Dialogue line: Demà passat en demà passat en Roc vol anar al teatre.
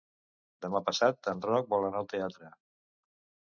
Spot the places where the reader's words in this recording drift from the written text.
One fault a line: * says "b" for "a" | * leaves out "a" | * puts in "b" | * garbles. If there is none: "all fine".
* leaves out "demà passat en"